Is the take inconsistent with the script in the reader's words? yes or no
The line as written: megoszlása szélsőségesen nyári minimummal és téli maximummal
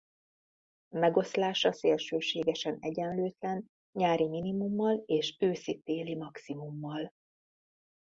yes